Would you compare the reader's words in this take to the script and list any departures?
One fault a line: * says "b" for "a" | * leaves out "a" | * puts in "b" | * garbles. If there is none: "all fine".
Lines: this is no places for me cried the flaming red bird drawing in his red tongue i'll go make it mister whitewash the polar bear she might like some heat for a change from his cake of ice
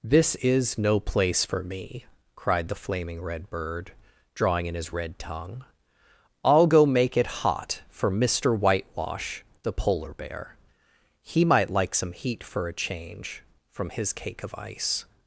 * says "place" for "places"
* puts in "hot for"
* says "he" for "she"